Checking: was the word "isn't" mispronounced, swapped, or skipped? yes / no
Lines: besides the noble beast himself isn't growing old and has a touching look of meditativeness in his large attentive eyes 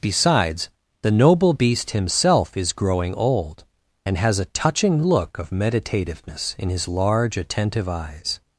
yes